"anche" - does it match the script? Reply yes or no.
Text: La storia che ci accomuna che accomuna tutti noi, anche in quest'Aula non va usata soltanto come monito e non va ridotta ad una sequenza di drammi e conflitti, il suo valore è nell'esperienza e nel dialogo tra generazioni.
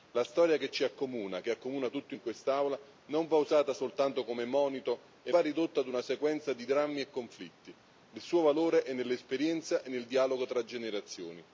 no